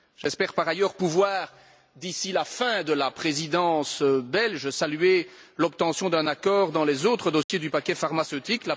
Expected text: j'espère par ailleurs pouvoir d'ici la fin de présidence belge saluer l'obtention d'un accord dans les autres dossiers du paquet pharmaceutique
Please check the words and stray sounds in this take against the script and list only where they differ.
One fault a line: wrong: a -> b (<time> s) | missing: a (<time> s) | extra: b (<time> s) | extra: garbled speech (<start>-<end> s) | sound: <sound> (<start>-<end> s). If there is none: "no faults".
extra: la (2.9 s)
sound: dropout (7.4-7.5 s)